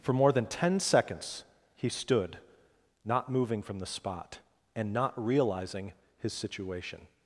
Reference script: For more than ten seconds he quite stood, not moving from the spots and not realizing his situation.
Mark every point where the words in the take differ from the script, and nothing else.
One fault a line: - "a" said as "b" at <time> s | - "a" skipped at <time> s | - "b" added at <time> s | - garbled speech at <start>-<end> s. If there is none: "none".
- "quite" skipped at 1.9 s
- "spots" said as "spot" at 3.9 s